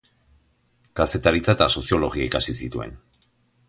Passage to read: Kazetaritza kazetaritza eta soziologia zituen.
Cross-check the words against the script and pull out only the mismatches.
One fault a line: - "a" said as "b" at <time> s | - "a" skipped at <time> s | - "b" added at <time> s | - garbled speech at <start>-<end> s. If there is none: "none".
- "kazetaritza" skipped at 1.6 s
- "ikasi" added at 2.3 s